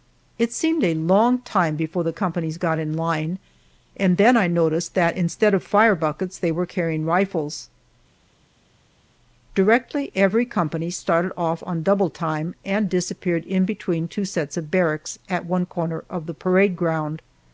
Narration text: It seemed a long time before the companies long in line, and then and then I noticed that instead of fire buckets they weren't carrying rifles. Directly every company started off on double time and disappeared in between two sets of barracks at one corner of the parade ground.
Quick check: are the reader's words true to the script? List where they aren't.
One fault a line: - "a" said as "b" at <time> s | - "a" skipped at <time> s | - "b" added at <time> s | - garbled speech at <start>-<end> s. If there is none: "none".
- "long" said as "got" at 2.6 s
- "and then" skipped at 4.3 s
- "weren't" said as "were" at 6.5 s